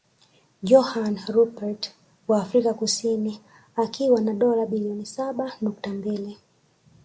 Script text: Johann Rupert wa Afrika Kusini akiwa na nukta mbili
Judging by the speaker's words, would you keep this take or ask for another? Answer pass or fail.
fail